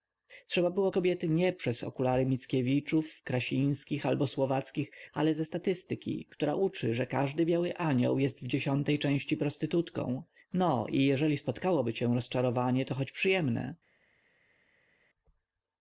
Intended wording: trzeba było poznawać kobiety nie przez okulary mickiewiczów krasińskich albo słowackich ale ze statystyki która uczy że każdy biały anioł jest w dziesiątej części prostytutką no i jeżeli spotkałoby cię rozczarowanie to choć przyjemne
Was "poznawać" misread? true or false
true